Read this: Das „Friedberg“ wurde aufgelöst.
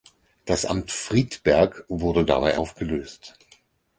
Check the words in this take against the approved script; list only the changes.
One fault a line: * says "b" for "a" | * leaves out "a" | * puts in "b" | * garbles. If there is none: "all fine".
* puts in "Amt"
* puts in "dabei"